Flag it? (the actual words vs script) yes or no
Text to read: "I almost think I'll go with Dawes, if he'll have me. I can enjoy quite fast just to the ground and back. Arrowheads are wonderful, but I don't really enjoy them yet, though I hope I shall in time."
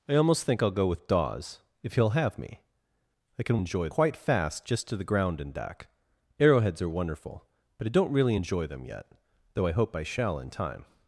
no